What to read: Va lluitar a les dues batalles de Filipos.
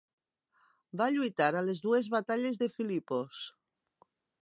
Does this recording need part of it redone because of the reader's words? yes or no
no